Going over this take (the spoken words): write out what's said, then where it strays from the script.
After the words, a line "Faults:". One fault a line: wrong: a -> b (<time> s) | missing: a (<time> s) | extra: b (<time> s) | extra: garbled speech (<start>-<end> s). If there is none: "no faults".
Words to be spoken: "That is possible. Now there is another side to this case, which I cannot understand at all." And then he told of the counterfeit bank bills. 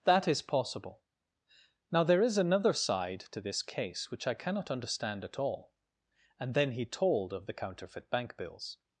"That is possible. Now there is another side to this case, which I cannot understand at all." And then he told of the counterfeit bank bills.
Faults:
no faults